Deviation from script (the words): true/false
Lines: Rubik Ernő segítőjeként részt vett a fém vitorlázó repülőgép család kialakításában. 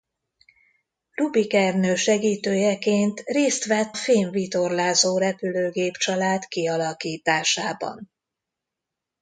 true